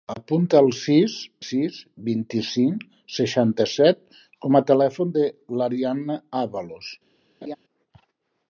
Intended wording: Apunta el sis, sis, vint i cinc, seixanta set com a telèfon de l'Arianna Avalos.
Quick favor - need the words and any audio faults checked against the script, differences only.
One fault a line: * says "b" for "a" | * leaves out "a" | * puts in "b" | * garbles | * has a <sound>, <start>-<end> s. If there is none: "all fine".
* has a laugh, 7.4-7.6 s